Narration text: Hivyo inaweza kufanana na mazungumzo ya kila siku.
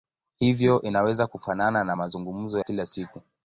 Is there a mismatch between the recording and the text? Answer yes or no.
yes